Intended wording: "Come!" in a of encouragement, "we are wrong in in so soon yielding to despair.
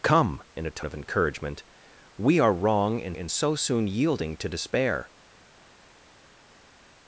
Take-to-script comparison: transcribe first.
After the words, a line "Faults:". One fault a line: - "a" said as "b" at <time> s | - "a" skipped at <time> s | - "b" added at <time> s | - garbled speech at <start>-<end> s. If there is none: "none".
"Come!" in a of encouragement, "we are wrong in in so soon yielding to despair.
Faults:
none